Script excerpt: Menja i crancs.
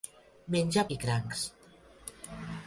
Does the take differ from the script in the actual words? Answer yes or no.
no